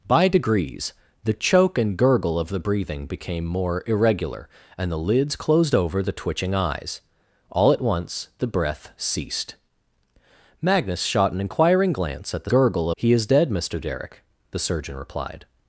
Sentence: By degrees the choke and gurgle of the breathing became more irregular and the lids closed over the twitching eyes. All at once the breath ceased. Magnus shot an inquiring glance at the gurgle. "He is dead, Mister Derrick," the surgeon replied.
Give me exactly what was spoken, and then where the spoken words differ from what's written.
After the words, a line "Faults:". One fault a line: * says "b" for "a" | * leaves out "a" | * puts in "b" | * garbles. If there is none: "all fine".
By degrees the choke and gurgle of the breathing became more irregular and the lids closed over the twitching eyes. All at once the breath ceased. Magnus shot an inquiring glance at the gurgle. "He is dead, Mister Derrick," the surgeon replied.
Faults:
all fine